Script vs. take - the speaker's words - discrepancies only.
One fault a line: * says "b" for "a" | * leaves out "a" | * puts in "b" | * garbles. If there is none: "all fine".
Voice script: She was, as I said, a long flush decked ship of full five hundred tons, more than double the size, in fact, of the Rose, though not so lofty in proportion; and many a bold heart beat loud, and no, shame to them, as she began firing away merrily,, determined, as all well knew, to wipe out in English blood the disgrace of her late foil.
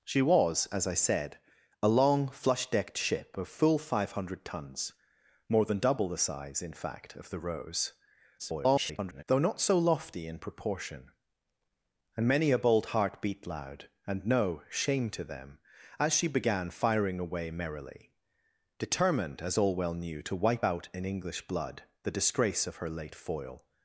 * garbles